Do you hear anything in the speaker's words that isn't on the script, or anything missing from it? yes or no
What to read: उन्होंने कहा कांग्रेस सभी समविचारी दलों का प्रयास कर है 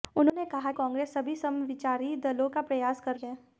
no